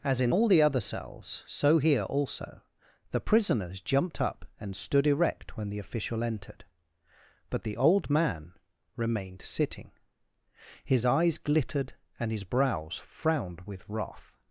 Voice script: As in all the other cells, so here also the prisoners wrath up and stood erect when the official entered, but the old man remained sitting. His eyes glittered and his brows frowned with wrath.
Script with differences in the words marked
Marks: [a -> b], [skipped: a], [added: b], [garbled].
As in all the other cells, so here also the prisoners [wrath -> jumped] up and stood erect when the official entered, but the old man remained sitting. His eyes glittered and his brows frowned with wrath.